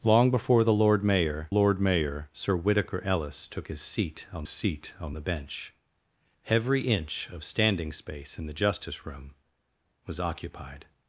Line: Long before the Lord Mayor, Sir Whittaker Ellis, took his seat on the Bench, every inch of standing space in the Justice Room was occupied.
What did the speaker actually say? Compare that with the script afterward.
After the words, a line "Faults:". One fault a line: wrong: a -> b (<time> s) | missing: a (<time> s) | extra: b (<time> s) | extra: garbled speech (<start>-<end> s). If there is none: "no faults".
Long before the Lord Mayor Lord Mayor, Sir Whittaker Ellis, took his seat on seat on the Bench, every inch of standing space in the Justice Room was occupied.
Faults:
extra: Lord Mayor (1.5 s)
extra: seat on (4.5 s)